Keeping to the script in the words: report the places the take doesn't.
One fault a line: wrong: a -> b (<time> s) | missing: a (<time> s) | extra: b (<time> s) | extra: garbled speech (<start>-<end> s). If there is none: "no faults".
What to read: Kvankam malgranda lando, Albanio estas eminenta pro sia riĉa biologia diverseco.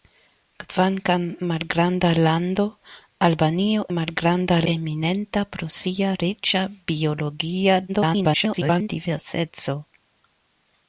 wrong: estas -> malgranda (4.0 s)
extra: garbled speech (7.9-8.9 s)